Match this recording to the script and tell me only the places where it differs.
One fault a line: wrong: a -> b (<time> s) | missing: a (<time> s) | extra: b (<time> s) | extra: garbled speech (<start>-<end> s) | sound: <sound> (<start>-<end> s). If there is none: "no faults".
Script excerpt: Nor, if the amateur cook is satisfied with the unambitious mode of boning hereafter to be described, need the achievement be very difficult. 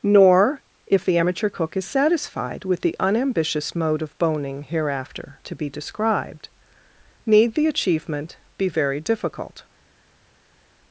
no faults